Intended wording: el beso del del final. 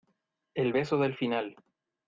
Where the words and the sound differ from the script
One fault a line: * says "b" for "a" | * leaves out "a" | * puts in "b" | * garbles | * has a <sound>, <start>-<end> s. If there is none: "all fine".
* leaves out "del"